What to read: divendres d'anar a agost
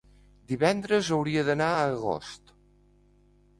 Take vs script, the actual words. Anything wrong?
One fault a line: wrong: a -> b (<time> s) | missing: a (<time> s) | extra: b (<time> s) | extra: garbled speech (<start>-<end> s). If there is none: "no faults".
extra: hauria (1.2 s)